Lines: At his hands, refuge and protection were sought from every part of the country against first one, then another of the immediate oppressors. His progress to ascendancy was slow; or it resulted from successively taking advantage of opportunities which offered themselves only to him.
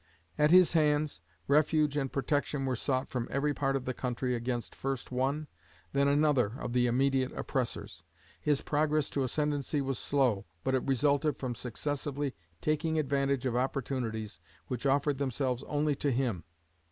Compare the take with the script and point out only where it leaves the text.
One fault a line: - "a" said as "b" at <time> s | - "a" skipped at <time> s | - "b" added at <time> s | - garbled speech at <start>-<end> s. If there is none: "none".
- "or" said as "but" at 10.6 s